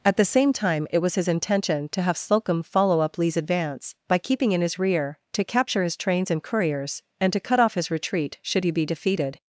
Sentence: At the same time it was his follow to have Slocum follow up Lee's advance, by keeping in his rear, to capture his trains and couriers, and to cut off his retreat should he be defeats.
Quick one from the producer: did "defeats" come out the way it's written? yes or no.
no